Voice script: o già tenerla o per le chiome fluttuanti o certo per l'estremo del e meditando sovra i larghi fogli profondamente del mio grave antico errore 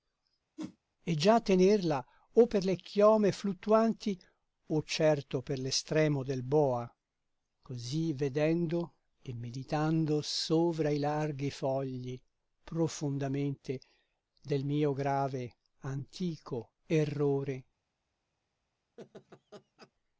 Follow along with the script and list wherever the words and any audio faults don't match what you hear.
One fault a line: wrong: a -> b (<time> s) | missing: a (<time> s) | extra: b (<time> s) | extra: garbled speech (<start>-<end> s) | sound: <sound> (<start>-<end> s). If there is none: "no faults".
sound: whoosh (0.6-0.8 s)
wrong: o -> e (1.0 s)
extra: boa così vedendo (6.4 s)
sound: laugh (19.0-19.9 s)